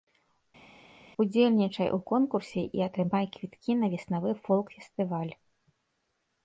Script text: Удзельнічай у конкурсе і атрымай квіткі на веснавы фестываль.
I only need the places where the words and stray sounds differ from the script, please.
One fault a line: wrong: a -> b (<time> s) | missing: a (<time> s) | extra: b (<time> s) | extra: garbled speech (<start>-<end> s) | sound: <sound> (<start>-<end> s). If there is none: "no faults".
extra: фолк (4.5 s)